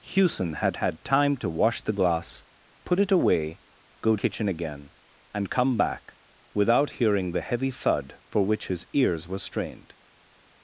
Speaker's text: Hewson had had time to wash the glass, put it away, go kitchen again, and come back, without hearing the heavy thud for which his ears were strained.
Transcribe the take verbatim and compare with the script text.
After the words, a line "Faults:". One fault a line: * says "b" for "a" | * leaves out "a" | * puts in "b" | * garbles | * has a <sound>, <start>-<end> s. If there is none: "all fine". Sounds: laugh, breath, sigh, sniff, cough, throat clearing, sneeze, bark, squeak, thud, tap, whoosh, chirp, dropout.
Hewson had had time to wash the glass, put it away, go kitchen again, and come back, without hearing the heavy thud for which his ears were strained.
Faults:
all fine